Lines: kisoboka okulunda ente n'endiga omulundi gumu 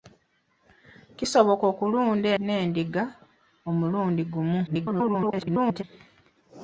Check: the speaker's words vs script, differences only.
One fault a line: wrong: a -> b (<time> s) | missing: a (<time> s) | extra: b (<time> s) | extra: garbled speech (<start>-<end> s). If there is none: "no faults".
missing: ente (2.3 s)
extra: garbled speech (4.7-5.8 s)